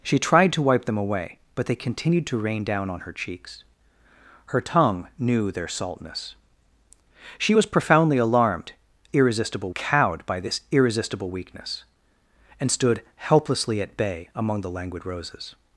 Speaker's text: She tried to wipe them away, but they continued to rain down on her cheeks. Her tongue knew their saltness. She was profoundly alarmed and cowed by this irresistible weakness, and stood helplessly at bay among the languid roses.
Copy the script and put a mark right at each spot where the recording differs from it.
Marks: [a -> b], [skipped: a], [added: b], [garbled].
She tried to wipe them away, but they continued to rain down on her cheeks. Her tongue knew their saltness. She was profoundly alarmed [and -> irresistible] cowed by this irresistible weakness, and stood helplessly at bay among the languid roses.